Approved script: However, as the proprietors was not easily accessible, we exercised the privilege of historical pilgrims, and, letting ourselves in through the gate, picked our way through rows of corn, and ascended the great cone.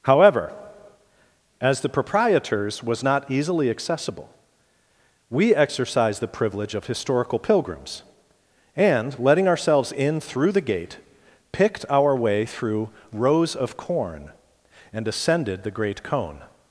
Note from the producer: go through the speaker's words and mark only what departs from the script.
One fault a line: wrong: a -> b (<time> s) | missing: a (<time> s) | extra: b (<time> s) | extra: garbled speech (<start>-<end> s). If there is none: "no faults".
no faults